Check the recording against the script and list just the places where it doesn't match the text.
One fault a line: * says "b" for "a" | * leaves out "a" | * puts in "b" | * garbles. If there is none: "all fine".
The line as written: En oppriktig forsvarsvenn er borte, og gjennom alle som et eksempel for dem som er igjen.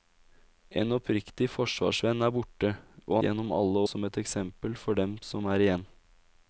all fine